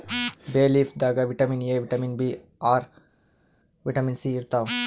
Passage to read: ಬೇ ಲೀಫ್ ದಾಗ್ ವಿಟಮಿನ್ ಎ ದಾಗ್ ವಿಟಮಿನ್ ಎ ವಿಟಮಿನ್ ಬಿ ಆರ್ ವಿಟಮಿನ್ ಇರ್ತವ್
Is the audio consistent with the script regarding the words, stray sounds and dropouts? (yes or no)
no